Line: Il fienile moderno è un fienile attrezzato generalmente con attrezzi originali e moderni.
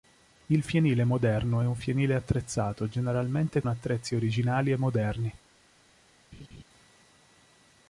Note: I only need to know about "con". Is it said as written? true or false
false